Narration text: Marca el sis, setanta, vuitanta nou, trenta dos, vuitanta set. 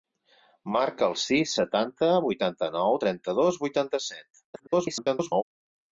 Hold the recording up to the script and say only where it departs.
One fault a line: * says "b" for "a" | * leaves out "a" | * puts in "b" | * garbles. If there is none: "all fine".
* garbles